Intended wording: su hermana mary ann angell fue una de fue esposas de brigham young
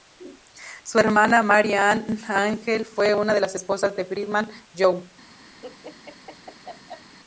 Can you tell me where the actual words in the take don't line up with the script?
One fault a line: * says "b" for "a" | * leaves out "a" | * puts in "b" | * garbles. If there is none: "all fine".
* says "las" for "fue"